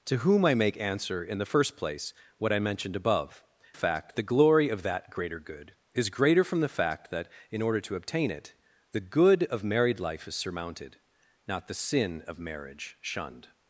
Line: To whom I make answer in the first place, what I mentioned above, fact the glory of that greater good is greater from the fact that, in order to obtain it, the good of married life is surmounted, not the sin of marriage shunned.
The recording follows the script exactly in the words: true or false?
true